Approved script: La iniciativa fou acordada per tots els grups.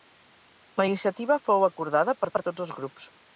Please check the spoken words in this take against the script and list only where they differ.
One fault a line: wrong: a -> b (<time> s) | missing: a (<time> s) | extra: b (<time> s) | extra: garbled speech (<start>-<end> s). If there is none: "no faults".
extra: per (2.3 s)